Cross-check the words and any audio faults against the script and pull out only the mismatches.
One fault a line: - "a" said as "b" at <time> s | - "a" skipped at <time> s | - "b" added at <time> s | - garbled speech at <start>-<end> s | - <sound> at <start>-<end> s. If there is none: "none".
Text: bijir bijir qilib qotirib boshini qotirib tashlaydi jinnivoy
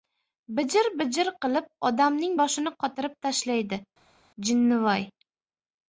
- "qotirib" said as "odamning" at 1.9 s